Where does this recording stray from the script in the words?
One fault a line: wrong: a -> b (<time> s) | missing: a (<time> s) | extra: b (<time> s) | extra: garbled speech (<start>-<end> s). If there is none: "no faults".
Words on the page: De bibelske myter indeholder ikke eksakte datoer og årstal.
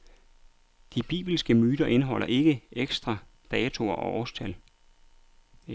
no faults